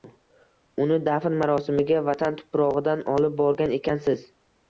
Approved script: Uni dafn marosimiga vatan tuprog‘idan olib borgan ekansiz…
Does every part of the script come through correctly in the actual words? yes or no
yes